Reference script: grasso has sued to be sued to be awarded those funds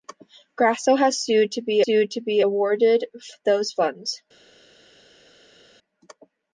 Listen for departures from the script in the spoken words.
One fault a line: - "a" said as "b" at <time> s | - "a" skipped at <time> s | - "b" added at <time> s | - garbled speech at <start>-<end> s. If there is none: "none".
none